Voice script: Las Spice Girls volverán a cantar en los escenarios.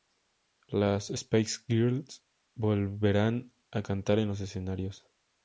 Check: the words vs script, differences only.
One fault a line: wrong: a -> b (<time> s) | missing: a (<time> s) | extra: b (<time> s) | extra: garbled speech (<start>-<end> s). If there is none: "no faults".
no faults